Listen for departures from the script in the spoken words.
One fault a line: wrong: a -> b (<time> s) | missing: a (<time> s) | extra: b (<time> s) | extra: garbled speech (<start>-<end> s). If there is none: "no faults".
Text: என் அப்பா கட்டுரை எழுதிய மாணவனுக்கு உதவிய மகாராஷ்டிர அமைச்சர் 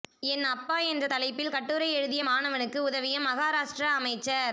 extra: என்ற தலைப்பில் (0.8 s)